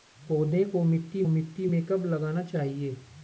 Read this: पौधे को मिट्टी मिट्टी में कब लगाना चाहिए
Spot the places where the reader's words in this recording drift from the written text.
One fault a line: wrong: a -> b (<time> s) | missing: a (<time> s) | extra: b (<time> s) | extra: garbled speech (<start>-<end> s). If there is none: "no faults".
no faults